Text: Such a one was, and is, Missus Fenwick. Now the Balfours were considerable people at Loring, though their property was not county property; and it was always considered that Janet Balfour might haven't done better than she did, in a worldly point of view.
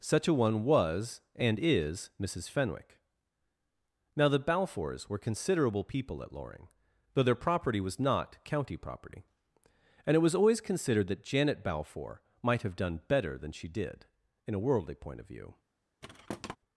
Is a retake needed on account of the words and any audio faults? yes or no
yes